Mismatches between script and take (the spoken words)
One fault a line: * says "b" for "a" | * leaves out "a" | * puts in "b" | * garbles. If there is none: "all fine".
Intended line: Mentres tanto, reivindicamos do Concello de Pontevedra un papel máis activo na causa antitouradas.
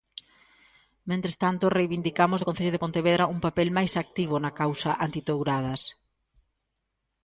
all fine